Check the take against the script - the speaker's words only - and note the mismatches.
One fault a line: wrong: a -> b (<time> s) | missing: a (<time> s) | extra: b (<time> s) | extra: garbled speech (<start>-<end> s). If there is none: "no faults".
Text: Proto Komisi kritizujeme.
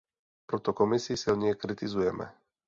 extra: silně (1.2 s)